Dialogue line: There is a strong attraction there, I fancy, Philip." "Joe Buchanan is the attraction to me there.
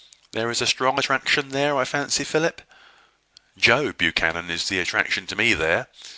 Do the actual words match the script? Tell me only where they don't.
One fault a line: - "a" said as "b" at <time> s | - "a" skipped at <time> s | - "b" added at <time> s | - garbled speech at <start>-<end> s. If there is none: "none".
none